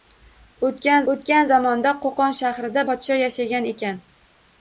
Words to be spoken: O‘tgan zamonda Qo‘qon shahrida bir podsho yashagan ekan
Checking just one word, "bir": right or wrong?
wrong